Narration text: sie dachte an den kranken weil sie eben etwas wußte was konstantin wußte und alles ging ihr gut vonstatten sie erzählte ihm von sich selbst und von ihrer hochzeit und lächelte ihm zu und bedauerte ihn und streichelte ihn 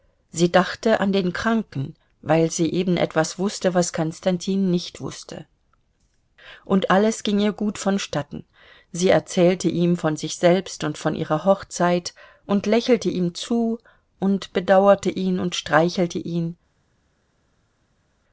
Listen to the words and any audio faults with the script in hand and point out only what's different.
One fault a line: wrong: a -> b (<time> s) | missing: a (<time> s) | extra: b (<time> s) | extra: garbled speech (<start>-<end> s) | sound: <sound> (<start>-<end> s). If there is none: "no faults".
extra: nicht (4.7 s)